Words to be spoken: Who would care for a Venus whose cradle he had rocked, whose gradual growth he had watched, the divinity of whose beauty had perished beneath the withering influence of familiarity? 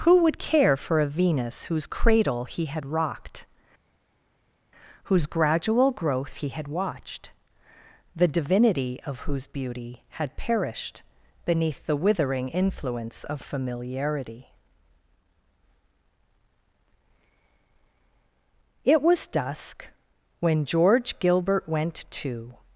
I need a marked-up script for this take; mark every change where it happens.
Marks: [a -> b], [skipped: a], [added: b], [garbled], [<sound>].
Who would care for a Venus whose cradle he had rocked, whose gradual growth he had watched, the divinity of whose beauty had perished beneath the withering influence of familiarity? [added: It was dusk when George Gilbert went to]